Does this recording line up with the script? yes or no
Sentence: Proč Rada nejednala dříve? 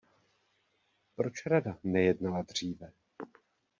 yes